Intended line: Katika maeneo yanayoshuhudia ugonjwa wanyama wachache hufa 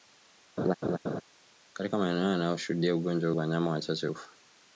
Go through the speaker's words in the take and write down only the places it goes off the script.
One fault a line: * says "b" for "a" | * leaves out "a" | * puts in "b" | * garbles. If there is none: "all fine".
all fine